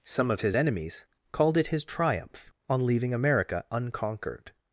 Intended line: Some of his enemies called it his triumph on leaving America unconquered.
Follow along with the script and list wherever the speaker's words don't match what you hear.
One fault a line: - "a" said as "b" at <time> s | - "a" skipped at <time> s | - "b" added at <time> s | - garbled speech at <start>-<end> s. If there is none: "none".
none